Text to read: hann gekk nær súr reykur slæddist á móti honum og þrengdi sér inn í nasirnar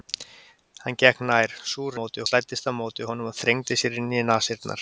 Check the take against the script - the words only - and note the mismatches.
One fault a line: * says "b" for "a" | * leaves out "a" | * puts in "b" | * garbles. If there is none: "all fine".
* says "móti" for "reykur"